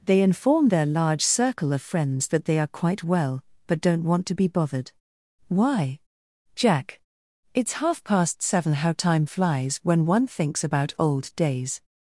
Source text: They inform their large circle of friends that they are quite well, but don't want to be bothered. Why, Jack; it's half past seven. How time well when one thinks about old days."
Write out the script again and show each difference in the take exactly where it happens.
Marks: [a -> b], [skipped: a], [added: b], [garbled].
They inform their large circle of friends that they are quite well, but don't want to be bothered. Why, Jack; it's half past seven. How time [well -> flies] when one thinks about old days."